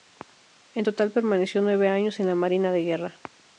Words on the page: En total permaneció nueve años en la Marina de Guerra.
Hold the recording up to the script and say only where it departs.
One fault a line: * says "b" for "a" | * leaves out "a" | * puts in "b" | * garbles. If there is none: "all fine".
all fine